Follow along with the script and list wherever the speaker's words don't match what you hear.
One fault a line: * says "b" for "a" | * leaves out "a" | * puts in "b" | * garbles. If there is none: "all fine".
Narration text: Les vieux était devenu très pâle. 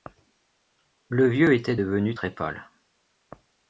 * says "Le" for "Les"